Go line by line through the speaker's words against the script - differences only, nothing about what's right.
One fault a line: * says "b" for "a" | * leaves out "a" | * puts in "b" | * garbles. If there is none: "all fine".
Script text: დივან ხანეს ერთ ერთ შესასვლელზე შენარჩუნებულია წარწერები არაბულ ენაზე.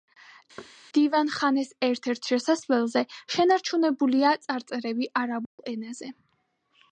all fine